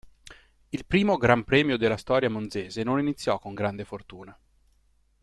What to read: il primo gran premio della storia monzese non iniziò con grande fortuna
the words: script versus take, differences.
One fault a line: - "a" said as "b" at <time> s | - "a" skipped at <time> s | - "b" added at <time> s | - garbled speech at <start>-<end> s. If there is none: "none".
none